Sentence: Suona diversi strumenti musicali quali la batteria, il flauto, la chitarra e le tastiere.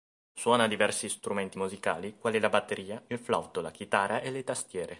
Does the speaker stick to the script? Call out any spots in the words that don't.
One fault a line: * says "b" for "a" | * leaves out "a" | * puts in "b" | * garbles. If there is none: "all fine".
all fine